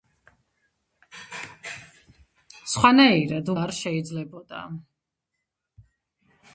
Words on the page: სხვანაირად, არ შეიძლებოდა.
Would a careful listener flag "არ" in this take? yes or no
no